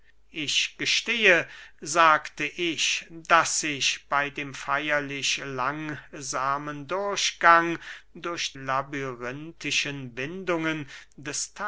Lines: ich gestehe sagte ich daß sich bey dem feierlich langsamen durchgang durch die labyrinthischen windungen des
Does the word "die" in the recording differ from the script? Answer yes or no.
yes